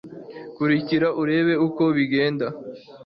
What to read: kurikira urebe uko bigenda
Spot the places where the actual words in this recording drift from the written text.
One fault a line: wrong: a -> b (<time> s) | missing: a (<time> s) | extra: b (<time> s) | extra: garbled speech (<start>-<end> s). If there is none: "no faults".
no faults